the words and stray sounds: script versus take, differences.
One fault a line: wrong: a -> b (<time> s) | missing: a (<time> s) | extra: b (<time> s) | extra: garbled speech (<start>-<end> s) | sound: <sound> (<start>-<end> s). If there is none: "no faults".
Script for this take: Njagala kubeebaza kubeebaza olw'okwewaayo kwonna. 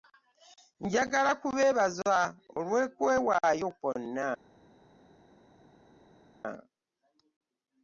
missing: kubeebaza (2.1 s)